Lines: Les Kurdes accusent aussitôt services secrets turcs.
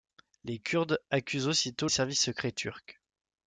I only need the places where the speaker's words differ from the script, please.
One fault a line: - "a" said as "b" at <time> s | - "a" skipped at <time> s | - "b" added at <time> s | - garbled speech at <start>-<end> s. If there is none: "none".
none